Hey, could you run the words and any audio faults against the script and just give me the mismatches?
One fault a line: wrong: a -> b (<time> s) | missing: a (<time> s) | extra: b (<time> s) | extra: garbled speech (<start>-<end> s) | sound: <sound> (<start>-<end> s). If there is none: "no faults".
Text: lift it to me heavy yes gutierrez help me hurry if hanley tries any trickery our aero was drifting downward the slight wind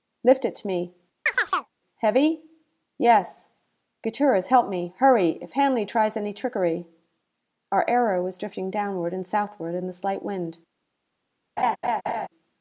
sound: chirp (1.3-1.7 s)
extra: and southward in (9.1 s)
sound: laugh (11.6-12.3 s)